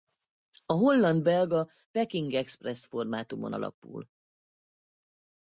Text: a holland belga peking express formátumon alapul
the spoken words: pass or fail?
pass